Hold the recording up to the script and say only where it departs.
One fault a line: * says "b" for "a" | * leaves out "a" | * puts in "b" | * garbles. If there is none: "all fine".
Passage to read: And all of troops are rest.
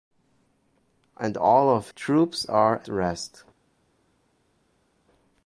all fine